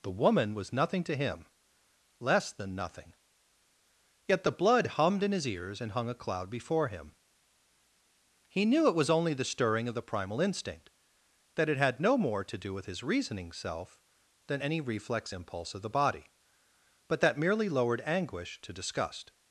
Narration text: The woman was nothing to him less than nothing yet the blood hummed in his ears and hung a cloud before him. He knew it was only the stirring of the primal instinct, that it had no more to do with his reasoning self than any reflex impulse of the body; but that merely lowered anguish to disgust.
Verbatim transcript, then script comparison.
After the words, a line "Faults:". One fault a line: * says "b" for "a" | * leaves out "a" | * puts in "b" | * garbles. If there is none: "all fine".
The woman was nothing to him less than nothing yet the blood hummed in his ears and hung a cloud before him. He knew it was only the stirring of the primal instinct, that it had no more to do with his reasoning self than any reflex impulse of the body; but that merely lowered anguish to disgust.
Faults:
all fine